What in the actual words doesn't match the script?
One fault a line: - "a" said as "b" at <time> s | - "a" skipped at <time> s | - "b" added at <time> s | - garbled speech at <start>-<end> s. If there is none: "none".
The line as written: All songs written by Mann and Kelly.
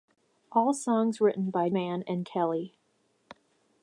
none